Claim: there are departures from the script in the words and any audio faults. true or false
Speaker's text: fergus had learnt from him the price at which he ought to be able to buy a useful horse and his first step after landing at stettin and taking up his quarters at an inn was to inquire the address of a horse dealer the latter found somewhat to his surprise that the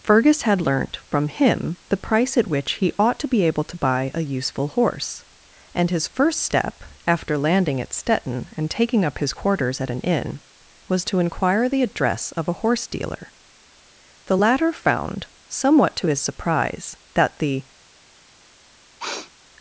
true